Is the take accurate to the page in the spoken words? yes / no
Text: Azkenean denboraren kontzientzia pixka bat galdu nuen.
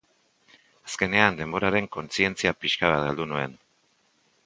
yes